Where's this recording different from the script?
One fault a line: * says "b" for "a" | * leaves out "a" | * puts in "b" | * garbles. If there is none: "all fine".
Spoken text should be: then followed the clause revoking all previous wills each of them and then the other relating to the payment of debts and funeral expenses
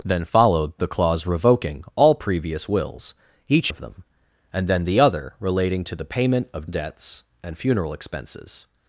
all fine